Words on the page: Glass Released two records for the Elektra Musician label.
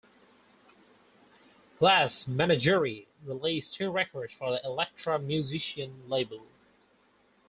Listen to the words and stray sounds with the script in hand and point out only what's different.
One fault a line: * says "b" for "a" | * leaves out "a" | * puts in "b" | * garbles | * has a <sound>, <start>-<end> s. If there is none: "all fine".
* puts in "Menagerie"